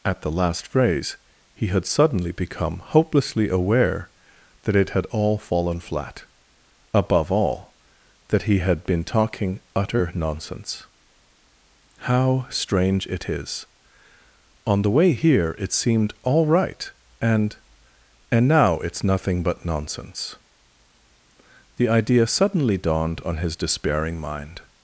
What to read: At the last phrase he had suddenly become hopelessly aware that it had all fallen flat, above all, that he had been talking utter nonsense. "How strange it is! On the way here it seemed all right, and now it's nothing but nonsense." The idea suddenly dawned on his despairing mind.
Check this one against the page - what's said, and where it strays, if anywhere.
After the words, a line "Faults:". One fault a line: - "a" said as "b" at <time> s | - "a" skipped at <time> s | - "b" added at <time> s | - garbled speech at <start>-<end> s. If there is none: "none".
At the last phrase he had suddenly become hopelessly aware that it had all fallen flat, above all, that he had been talking utter nonsense. "How strange it is! On the way here it seemed all right, and and now it's nothing but nonsense." The idea suddenly dawned on his despairing mind.
Faults:
- "and" added at 18.3 s